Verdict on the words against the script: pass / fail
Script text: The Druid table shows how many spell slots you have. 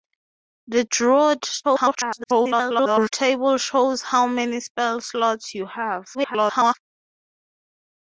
fail